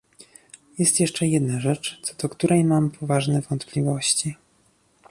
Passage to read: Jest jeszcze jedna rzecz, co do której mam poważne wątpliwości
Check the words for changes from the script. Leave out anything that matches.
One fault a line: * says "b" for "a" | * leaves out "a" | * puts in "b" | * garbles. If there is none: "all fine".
all fine